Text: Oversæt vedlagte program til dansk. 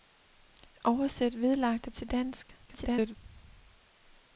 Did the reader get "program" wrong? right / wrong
wrong